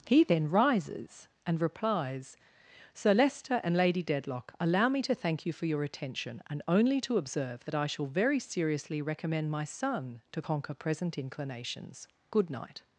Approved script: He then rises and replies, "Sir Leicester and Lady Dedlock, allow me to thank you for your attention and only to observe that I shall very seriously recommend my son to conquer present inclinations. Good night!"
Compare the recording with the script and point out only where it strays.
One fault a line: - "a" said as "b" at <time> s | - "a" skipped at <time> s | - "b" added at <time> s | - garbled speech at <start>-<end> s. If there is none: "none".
none